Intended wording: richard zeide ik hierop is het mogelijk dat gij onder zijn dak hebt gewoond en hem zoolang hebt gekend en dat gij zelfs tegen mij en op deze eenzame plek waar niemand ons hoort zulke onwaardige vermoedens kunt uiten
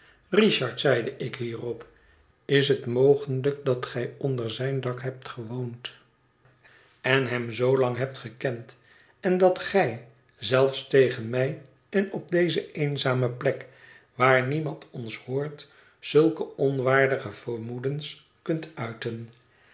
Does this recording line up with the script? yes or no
yes